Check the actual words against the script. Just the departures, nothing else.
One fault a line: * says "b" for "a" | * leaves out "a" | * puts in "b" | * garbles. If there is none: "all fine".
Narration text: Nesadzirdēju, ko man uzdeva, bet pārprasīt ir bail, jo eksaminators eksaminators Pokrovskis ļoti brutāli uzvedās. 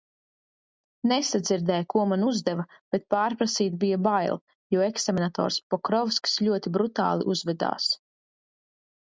* says "bija" for "ir"
* leaves out "eksaminators"